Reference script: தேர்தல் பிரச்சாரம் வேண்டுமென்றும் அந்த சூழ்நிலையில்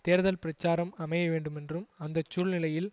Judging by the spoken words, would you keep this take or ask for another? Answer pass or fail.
fail